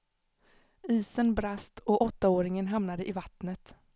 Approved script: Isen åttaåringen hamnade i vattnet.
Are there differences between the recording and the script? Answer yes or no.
yes